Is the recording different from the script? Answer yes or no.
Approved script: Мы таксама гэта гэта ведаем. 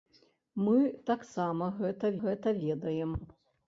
no